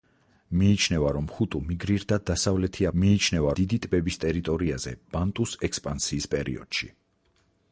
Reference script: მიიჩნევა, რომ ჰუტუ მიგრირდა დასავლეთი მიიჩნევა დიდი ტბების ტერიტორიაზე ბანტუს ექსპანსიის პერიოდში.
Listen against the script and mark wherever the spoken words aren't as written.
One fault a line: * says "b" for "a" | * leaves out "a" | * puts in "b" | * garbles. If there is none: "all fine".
all fine